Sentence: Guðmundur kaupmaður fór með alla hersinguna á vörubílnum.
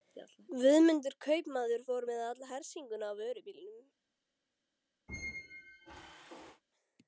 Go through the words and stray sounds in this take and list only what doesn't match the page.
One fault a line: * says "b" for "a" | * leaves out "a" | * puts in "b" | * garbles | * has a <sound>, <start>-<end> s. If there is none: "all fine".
* has a squeak, 5.1-6.6 s